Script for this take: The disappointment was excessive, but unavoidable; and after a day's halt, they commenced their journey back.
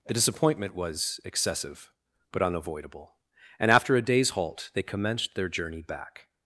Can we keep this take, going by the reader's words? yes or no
yes